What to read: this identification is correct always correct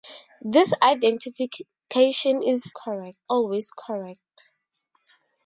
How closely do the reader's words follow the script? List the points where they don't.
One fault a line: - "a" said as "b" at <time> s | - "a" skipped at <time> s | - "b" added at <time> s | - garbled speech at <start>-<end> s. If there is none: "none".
none